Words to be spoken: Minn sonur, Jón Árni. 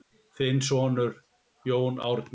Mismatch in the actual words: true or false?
true